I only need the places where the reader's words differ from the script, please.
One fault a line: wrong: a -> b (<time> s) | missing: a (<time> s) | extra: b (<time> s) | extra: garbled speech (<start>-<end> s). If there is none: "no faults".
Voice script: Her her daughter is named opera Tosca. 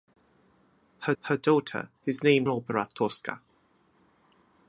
no faults